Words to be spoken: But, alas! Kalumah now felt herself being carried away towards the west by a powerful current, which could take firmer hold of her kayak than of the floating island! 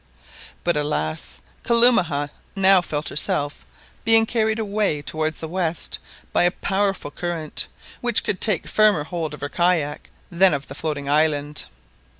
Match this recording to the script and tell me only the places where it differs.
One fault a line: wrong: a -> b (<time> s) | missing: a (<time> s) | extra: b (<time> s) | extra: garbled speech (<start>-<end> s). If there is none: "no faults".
no faults